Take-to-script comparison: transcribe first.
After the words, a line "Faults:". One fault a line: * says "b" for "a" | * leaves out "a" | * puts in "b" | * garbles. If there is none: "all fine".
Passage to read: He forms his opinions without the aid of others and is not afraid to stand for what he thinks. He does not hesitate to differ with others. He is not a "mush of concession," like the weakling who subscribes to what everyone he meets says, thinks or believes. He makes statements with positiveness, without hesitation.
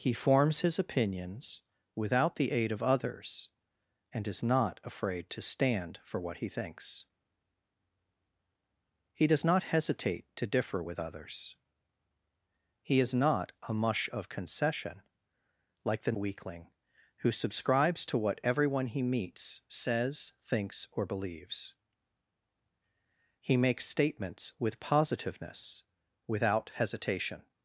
He forms his opinions without the aid of others and is not afraid to stand for what he thinks. He does not hesitate to differ with others. He is not a "mush of concession," like the weakling who subscribes to what everyone he meets says, thinks or believes. He makes statements with positiveness, without hesitation.
Faults:
all fine